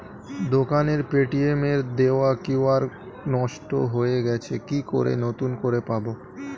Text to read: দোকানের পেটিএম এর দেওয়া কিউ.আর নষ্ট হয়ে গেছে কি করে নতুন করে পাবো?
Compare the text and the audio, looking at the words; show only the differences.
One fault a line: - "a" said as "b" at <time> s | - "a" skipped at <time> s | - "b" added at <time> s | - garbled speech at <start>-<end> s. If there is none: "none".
none